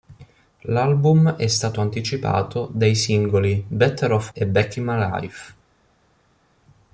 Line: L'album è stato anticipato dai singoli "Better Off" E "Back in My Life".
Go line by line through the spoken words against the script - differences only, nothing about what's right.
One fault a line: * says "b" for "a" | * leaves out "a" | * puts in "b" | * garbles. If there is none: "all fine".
all fine